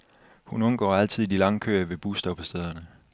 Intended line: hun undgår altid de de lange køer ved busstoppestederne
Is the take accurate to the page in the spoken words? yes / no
no